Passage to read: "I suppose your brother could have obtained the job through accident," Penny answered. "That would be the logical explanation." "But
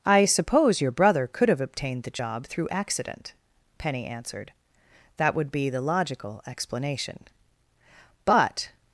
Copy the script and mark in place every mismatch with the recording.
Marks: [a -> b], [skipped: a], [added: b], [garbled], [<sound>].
"I suppose your brother could have obtained the job through accident," Penny answered. "That would be the logical explanation." "But